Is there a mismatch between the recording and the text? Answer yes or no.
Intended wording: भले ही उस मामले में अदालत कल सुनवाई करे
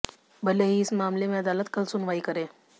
yes